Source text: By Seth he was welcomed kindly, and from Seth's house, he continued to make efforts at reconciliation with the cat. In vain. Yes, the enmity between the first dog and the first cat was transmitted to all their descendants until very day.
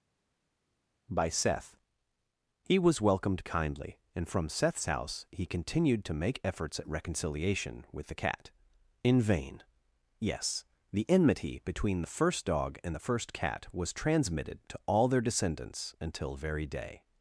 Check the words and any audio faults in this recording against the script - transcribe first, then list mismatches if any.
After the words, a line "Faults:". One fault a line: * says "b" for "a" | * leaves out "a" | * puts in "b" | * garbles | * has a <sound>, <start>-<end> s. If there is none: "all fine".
By Seth he was welcomed kindly, and from Seth's house, he continued to make efforts at reconciliation with the cat. In vain. Yes, the enmity between the first dog and the first cat was transmitted to all their descendants until very day.
Faults:
all fine